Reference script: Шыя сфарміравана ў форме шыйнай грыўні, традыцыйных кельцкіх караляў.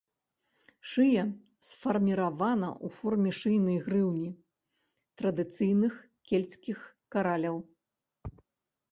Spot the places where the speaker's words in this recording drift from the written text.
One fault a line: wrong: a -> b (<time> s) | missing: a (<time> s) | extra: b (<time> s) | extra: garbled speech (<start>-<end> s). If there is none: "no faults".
no faults